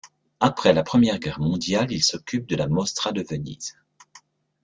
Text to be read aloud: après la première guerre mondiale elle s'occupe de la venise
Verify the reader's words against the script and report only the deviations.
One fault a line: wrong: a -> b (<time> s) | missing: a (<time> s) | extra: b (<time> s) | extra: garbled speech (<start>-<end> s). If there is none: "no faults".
wrong: elle -> il (1.9 s)
extra: mostra de (2.7 s)